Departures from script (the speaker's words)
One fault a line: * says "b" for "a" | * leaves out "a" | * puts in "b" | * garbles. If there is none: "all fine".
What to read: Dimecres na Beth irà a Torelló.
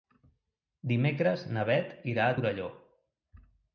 all fine